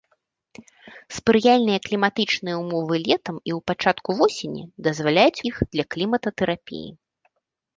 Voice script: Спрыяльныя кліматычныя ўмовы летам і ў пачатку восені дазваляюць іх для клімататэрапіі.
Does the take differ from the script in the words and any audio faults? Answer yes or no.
no